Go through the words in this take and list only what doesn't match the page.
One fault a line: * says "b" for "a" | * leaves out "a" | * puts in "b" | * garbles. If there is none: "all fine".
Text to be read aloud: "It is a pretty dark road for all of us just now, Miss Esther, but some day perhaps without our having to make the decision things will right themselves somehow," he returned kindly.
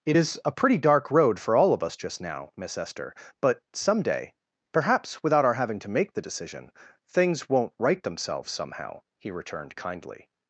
* says "won't" for "will"